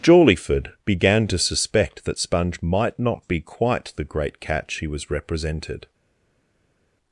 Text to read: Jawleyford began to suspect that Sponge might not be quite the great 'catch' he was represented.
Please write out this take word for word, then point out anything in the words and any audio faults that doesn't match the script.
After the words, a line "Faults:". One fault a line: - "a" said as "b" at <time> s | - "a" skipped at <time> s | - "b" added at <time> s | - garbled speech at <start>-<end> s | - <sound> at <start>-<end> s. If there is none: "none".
Jawleyford began to suspect that Sponge might not be quite the great 'catch' he was represented.
Faults:
none